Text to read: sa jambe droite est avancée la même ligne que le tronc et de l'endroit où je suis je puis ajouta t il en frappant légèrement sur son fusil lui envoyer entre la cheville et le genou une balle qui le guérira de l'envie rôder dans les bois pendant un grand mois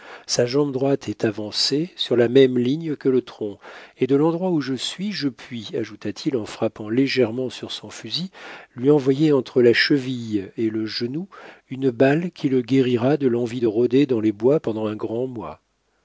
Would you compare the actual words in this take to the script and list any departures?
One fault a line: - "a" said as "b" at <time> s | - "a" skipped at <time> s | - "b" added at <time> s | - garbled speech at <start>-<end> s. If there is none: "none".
- "sur" added at 1.9 s
- "de" added at 13.6 s